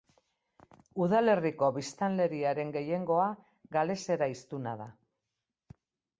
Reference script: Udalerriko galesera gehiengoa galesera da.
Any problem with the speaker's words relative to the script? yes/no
yes